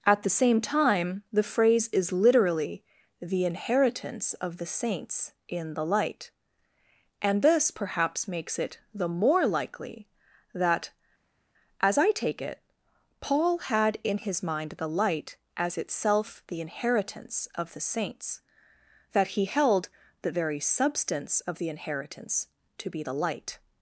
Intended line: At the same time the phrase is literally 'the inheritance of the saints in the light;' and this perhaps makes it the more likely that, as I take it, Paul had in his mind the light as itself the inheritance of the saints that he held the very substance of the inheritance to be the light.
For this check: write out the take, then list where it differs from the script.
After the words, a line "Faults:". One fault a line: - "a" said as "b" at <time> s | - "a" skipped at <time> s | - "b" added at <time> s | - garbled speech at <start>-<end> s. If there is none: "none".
At the same time the phrase is literally 'the inheritance of the saints in the light;' and this perhaps makes it the more likely that, as I take it, Paul had in his mind the light as itself the inheritance of the saints that he held the very substance of the inheritance to be the light.
Faults:
none